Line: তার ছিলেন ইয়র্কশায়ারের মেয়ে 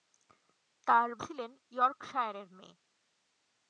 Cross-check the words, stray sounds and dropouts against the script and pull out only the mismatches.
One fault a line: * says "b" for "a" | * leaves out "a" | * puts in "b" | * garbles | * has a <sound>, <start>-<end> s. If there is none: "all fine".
all fine